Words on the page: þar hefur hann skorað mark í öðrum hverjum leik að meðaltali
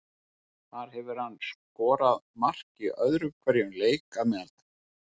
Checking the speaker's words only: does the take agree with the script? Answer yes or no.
yes